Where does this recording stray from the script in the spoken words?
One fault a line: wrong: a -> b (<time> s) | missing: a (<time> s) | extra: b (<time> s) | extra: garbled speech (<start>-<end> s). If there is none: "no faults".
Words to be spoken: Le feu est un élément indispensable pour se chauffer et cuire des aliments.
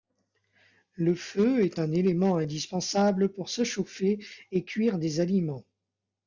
no faults